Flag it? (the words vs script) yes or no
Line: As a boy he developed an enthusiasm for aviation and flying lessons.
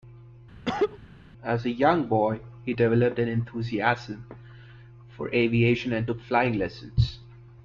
yes